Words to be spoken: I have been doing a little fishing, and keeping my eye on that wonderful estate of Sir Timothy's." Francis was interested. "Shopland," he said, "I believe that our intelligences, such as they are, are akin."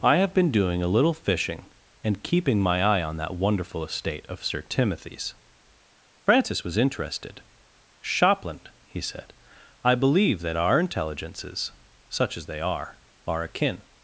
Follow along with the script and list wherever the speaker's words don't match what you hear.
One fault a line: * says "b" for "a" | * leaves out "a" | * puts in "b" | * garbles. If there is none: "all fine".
all fine